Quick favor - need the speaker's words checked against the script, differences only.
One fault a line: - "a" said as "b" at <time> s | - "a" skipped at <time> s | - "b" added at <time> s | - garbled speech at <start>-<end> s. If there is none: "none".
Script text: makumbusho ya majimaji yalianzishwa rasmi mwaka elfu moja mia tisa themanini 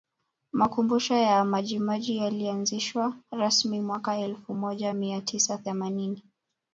none